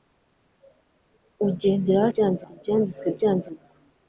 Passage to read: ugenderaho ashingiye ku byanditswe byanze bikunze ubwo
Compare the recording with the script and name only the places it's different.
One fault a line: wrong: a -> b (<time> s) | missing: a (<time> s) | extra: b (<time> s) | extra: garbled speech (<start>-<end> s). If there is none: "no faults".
wrong: ashingiye -> byanze (2.1 s)
missing: bikunze (3.5 s)